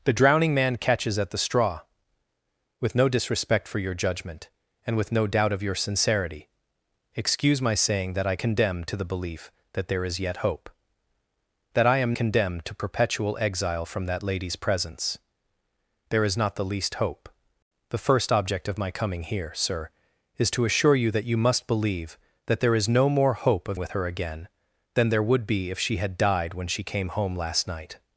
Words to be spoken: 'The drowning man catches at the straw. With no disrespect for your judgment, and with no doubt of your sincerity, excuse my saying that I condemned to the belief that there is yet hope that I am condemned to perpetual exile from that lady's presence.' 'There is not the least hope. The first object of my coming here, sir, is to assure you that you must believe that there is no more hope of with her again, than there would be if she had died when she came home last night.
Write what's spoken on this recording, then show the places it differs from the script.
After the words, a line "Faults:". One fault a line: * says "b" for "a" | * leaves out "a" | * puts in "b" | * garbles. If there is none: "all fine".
'The drowning man catches at the straw. With no disrespect for your judgment, and with no doubt of your sincerity, excuse my saying that I condemned to the belief that there is yet hope that I am condemned to perpetual exile from that lady's presence.' 'There is not the least hope. The first object of my coming here, sir, is to assure you that you must believe that there is no more hope of with her again, than there would be if she had died when she came home last night.
Faults:
all fine